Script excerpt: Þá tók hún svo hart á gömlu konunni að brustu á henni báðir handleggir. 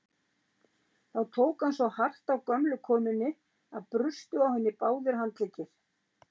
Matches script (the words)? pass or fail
fail